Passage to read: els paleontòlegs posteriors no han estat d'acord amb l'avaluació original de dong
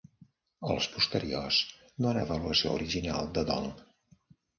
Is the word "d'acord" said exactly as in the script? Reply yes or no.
no